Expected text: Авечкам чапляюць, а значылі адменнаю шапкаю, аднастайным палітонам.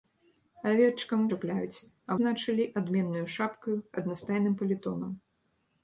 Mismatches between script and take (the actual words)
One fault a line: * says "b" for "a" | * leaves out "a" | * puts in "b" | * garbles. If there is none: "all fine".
all fine